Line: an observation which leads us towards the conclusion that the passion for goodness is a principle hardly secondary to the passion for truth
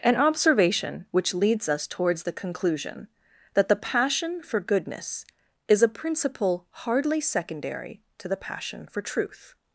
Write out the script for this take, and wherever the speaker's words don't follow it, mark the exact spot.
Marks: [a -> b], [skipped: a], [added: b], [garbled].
an observation which leads us towards the conclusion that the passion for goodness is a principle hardly secondary to the passion for truth